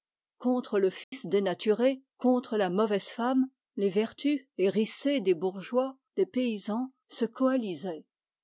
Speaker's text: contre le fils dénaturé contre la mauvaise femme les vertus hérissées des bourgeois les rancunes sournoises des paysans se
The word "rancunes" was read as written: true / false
false